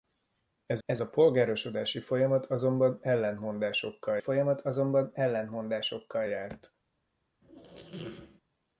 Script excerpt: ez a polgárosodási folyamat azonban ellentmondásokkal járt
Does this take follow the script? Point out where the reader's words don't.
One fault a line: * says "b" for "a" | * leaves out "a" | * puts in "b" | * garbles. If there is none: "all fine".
* puts in "ez"
* puts in "folyamat azonban ellentmondásokkal"